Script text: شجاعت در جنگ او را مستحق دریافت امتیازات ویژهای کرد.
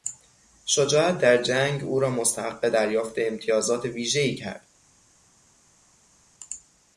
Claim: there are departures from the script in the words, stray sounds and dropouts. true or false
false